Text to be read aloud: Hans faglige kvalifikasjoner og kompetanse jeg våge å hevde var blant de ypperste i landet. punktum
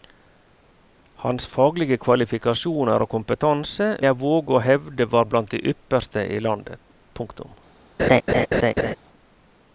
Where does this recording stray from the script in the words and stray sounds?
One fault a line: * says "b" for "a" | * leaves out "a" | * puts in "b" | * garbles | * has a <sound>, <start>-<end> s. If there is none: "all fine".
* has a laugh, 8.0-8.9 s